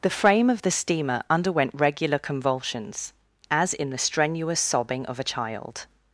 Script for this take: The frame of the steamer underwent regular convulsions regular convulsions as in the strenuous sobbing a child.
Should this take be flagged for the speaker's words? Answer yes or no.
yes